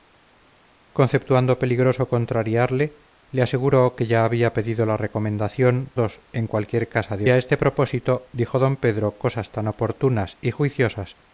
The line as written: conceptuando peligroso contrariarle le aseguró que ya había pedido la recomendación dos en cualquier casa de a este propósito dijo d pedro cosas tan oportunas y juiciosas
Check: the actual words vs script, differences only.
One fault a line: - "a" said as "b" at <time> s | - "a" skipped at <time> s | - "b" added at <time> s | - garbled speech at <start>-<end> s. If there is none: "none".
none